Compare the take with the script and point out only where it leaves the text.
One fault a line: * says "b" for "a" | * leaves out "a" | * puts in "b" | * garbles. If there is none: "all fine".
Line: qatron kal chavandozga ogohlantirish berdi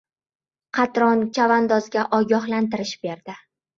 * leaves out "kal"